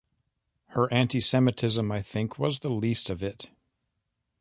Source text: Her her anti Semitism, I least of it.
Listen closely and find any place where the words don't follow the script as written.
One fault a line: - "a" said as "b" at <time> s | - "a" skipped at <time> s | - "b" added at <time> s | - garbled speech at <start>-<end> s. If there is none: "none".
- "her" skipped at 0.9 s
- "think was the" added at 2.0 s